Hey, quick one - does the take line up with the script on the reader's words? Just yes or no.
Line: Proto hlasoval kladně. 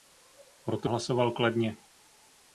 yes